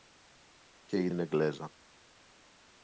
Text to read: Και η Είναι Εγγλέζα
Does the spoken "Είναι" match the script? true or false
true